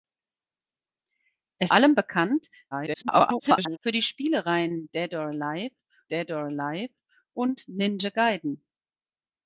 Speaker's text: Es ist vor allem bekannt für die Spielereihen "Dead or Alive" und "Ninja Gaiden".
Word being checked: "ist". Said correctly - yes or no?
no